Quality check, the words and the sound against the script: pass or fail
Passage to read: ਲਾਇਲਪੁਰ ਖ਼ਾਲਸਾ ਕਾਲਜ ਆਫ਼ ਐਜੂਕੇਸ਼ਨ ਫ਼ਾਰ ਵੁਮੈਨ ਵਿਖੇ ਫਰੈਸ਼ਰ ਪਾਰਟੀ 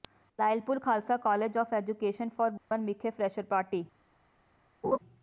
fail